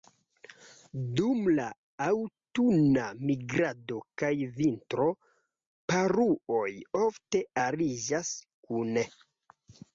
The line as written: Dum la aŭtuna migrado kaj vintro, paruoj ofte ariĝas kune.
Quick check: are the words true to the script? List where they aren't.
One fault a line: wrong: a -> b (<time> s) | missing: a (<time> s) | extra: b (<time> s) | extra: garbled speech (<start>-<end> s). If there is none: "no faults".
no faults